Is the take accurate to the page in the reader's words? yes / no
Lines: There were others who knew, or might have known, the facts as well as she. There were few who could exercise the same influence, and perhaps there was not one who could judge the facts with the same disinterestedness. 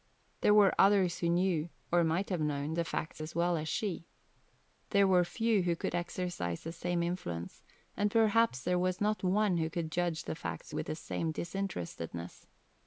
yes